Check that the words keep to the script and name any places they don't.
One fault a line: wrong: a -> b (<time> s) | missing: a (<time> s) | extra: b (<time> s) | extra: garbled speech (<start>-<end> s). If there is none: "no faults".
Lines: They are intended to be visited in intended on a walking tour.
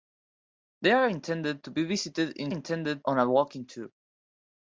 no faults